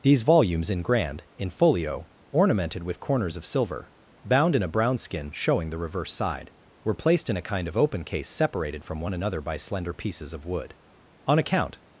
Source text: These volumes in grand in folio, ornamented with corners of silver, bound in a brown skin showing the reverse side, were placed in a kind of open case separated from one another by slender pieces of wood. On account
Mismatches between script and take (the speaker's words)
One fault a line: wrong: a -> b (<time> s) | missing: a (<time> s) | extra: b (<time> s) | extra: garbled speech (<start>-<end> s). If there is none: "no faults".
no faults